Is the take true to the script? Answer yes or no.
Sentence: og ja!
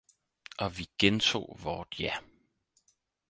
no